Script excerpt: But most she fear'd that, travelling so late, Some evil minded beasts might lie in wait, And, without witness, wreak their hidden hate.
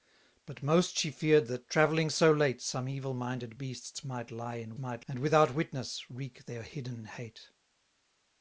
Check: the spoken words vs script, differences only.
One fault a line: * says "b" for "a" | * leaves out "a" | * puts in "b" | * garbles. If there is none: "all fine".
* says "might" for "wait"